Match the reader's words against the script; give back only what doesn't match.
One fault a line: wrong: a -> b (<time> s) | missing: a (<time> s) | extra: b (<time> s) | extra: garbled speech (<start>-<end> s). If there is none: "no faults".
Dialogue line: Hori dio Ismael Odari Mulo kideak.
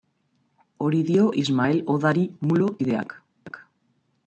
no faults